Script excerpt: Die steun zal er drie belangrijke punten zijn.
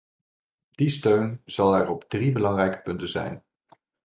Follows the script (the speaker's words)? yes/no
no